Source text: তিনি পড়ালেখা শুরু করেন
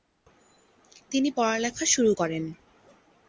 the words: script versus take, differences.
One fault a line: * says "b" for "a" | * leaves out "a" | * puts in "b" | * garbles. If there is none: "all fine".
all fine